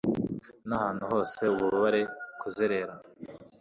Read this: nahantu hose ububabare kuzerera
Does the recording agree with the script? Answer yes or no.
yes